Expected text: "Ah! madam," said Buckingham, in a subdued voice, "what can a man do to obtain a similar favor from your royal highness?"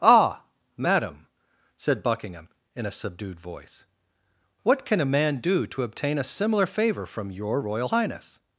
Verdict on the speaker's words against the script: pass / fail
pass